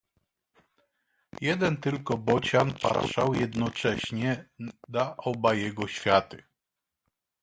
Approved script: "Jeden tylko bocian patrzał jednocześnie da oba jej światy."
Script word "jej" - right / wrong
wrong